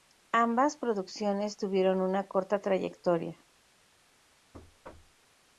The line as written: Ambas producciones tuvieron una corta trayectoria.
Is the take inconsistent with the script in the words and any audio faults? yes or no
yes